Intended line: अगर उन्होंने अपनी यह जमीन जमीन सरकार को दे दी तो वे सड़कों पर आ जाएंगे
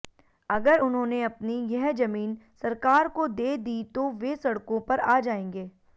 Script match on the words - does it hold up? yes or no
no